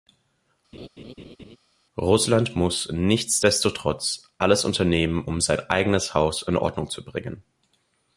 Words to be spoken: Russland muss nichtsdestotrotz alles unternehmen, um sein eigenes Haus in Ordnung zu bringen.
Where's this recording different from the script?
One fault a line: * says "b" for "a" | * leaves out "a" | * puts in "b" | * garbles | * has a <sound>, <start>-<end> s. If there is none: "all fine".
* has a laugh, 0.7-1.6 s